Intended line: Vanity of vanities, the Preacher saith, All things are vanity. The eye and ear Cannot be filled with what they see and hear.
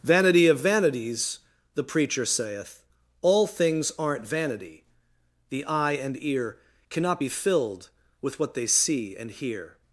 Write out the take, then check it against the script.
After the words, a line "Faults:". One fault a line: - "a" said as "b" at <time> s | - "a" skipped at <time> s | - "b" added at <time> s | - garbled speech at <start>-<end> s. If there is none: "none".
Vanity of vanities, the Preacher saith, All things aren't vanity. The eye and ear Cannot be filled with what they see and hear.
Faults:
- "are" said as "aren't" at 4.0 s